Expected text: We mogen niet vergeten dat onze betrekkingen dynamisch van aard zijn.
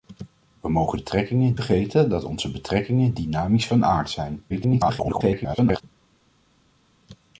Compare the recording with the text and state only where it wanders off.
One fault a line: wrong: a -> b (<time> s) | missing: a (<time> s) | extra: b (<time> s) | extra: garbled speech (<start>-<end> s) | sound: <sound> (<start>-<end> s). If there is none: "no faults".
wrong: niet -> betrekkingen (0.9 s)
extra: garbled speech (4.5-5.8 s)